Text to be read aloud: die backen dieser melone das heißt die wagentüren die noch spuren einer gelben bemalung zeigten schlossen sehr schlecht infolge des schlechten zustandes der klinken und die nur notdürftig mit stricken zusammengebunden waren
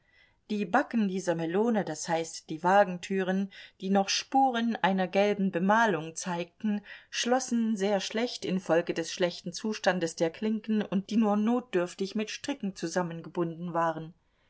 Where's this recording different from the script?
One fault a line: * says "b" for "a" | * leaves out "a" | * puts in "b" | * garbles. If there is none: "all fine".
all fine